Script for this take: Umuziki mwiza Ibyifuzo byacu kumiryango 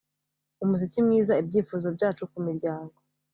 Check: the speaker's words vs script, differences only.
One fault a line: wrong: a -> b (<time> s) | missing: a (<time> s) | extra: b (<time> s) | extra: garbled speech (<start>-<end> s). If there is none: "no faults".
no faults